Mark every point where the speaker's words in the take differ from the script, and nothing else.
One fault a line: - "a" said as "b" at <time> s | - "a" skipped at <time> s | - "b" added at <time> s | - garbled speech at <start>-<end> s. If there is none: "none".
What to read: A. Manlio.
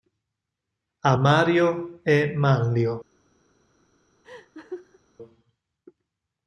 - "Mario e" added at 1.1 s